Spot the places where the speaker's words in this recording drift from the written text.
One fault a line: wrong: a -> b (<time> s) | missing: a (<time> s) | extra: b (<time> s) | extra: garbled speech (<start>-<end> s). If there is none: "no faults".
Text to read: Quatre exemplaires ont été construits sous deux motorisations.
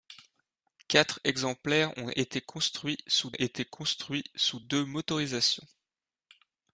extra: été construits sous (3.3 s)